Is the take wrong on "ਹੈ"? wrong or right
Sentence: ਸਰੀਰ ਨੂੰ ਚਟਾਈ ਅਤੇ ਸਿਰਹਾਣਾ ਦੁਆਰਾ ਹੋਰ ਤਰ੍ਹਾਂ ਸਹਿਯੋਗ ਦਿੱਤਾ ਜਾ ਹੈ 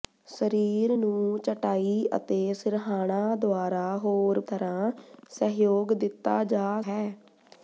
right